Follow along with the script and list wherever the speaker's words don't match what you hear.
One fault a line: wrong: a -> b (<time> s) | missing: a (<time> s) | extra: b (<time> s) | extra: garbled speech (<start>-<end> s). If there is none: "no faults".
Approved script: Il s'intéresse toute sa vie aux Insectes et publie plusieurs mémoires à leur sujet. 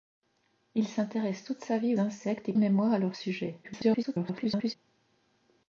missing: aux (1.9 s)
missing: publie plusieurs (2.5 s)
extra: garbled speech (3.6-4.7 s)